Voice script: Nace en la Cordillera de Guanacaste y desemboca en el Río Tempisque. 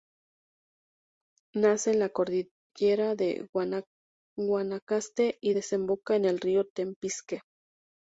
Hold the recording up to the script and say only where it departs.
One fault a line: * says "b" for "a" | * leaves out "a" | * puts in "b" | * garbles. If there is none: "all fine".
all fine